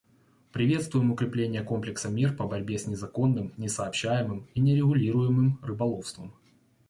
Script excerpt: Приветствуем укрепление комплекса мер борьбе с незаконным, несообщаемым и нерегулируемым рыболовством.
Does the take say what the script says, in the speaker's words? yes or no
no